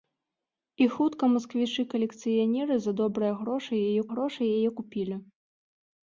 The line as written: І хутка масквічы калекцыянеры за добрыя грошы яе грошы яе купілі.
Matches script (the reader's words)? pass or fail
pass